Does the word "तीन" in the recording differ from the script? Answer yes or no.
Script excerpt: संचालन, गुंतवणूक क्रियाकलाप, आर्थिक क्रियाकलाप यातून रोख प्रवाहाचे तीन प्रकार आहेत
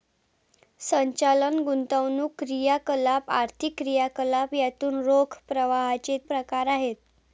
yes